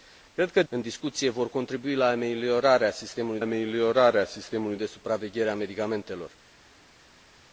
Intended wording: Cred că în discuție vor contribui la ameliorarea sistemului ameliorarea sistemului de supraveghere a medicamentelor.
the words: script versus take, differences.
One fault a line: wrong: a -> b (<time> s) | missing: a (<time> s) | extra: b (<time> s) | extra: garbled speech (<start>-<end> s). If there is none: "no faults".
no faults